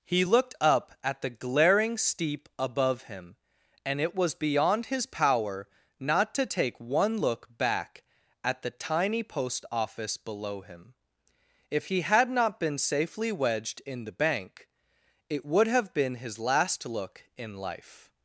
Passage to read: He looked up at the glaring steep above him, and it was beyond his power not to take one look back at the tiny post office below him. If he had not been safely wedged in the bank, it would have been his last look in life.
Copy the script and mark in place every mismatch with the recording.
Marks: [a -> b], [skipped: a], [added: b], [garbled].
He looked up at the glaring steep above him, and it was beyond his power not to take one look back at the tiny post office below him. If he had not been safely wedged in the bank, it would have been his last look in life.